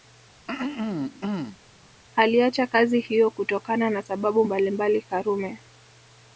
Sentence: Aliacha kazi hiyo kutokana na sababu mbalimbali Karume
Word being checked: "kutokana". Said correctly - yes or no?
yes